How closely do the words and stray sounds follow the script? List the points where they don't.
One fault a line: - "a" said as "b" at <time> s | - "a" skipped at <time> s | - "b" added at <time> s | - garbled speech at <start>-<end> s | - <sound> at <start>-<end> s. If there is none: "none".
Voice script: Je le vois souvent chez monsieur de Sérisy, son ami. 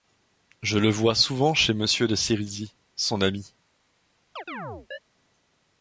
- chirp at 4.4-5.0 s